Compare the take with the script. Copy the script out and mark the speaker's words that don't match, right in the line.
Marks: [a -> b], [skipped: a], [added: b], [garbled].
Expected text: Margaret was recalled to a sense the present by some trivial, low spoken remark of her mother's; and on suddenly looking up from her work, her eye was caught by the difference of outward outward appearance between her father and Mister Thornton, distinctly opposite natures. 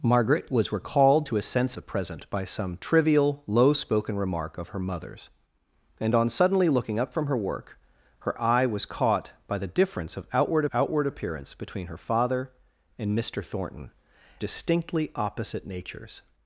Margaret was recalled to a sense the present by some trivial, low spoken remark of her mother's; and on suddenly looking up from her work, her eye was caught by the difference of outward outward appearance between her father and Mister Thornton, distinctly opposite natures.